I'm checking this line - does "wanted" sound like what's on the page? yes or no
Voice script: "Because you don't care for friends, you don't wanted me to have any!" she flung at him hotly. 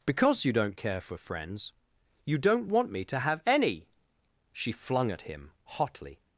no